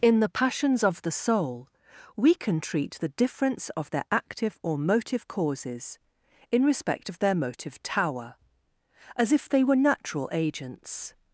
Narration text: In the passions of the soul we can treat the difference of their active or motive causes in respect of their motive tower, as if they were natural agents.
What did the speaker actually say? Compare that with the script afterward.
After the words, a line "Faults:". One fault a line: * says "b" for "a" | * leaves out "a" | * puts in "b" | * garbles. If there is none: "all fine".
In the passions of the soul we can treat the difference of their active or motive causes in respect of their motive tower, as if they were natural agents.
Faults:
all fine